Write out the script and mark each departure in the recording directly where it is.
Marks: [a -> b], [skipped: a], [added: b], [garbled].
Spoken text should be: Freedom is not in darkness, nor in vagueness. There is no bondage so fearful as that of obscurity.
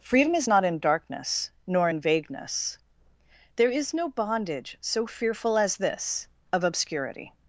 Freedom is not in darkness, nor in vagueness. There is no bondage so fearful as [that -> this] of obscurity.